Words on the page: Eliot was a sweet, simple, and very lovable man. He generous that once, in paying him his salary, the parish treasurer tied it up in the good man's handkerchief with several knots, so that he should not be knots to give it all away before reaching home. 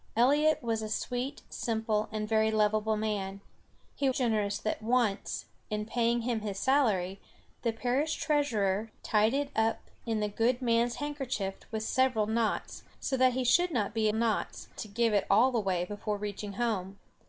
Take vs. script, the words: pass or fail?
pass